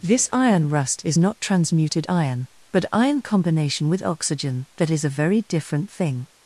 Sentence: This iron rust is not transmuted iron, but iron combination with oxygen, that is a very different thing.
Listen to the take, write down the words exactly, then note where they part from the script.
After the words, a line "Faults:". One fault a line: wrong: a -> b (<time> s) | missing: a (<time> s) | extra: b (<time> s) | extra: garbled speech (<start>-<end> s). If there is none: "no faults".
This iron rust is not transmuted iron, but iron combination with oxygen, that is a very different thing.
Faults:
no faults